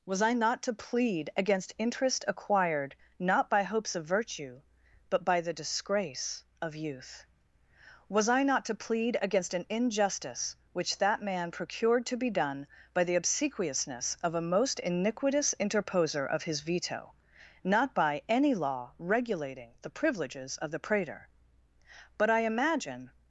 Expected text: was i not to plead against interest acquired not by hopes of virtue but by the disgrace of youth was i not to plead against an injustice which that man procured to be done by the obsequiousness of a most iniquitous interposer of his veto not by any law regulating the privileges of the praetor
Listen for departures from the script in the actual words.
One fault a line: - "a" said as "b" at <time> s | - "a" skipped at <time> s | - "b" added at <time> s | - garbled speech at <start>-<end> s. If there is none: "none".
- "but i imagine" added at 22.2 s